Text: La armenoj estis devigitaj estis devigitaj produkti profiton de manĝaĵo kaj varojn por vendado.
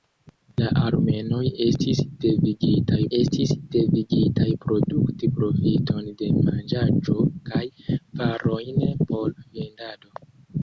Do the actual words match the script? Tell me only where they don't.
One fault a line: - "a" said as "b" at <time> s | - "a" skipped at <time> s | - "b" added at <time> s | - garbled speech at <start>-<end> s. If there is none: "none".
none